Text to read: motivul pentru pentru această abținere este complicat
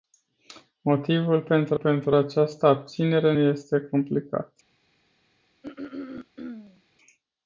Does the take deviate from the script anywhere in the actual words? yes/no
no